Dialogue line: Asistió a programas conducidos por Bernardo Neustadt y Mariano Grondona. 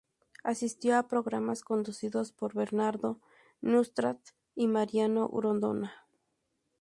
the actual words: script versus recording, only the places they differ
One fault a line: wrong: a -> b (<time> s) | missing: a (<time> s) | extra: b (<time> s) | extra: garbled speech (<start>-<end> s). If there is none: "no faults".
no faults